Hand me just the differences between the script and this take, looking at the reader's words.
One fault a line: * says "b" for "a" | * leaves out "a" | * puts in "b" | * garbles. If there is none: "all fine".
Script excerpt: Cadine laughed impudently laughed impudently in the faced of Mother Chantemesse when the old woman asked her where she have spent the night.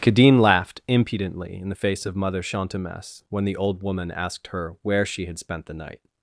* leaves out "laughed impudently"
* says "face" for "faced"
* says "had" for "have"